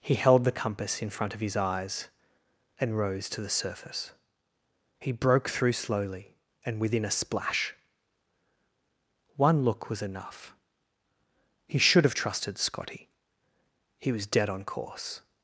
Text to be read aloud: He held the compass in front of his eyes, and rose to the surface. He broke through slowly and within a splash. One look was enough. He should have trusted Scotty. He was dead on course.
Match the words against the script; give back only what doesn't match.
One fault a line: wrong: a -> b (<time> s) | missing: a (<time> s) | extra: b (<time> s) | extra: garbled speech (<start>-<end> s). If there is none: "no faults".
no faults